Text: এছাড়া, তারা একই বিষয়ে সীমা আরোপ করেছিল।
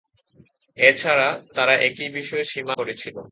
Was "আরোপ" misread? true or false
true